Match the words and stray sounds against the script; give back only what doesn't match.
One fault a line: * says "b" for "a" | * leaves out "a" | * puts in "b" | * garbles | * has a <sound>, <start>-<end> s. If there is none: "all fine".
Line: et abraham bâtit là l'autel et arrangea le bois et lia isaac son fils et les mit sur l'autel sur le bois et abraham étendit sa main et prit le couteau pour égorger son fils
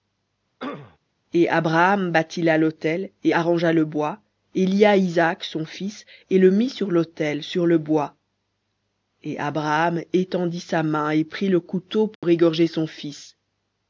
* has a throat clearing, 0.6-1.0 s
* says "le" for "les"
* has a dropout, 12.2-12.2 s